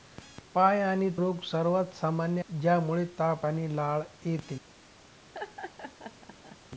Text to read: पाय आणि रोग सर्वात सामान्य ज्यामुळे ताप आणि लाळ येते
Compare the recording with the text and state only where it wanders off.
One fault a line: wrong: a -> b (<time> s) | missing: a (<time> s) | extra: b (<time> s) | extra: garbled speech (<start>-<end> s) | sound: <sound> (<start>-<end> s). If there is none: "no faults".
sound: laugh (5.3-6.6 s)